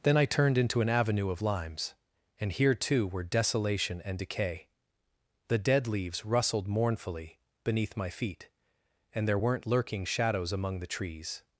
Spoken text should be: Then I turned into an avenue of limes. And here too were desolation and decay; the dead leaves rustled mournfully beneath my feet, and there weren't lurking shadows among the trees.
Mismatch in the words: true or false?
false